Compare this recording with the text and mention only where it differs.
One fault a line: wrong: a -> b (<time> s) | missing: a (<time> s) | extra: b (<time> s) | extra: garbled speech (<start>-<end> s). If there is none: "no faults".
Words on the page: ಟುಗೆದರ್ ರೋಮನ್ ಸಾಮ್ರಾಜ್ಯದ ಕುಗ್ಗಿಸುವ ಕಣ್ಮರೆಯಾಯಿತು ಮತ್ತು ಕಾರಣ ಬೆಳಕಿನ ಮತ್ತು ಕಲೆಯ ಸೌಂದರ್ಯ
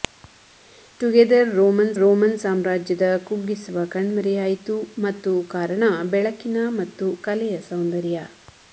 extra: ರೋಮನ್ (2.0 s)